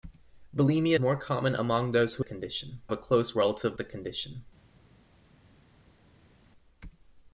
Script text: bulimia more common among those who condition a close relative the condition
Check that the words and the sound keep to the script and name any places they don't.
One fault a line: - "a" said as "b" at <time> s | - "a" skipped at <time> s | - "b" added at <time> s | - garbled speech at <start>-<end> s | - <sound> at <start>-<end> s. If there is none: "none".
none